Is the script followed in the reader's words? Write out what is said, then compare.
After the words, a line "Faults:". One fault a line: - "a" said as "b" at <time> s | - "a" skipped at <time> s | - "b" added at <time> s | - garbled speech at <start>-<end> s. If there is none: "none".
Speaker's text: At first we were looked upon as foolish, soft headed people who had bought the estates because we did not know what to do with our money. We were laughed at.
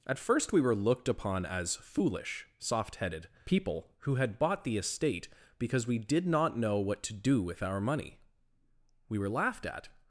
At first we were looked upon as foolish, soft headed people who had bought the estate because we did not know what to do with our money. We were laughed at.
Faults:
- "estates" said as "estate" at 4.8 s